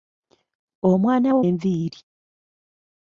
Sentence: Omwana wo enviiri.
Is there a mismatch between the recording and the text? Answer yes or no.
no